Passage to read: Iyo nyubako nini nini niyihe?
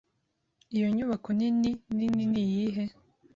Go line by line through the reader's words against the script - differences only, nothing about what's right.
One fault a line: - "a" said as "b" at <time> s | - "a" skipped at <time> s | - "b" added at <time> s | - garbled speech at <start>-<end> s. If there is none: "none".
none